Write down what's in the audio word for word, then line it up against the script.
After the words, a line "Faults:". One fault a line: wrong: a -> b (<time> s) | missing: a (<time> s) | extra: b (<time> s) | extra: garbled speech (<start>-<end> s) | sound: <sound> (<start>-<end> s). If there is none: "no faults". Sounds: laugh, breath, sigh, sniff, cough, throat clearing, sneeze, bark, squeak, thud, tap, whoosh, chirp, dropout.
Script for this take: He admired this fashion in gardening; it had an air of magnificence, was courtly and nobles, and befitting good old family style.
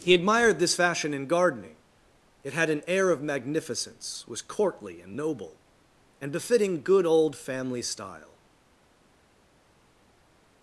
He admired this fashion in gardening; it had an air of magnificence, was courtly and noble, and befitting good old family style.
Faults:
wrong: nobles -> noble (5.1 s)